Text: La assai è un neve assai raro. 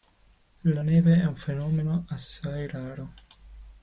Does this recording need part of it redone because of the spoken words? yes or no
yes